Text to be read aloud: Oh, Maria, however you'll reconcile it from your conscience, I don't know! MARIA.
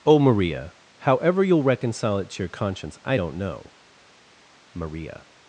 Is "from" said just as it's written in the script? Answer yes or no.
no